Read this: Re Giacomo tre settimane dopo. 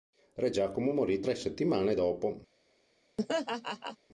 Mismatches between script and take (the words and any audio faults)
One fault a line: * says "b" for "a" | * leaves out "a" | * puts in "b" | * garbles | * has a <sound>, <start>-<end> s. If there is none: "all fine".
* puts in "morì"
* has a laugh, 3.2-4.0 s